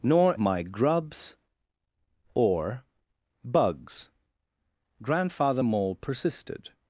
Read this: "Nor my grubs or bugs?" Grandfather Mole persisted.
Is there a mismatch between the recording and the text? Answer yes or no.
no